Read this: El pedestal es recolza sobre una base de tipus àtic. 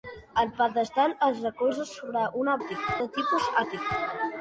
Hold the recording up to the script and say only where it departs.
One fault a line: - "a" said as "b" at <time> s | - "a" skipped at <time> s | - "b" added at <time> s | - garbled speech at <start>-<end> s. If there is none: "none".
- "base" said as "àtic" at 2.6 s